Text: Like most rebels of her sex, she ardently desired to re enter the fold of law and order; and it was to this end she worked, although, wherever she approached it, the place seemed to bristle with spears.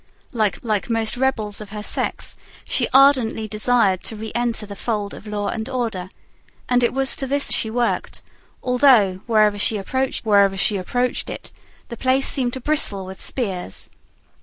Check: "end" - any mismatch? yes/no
yes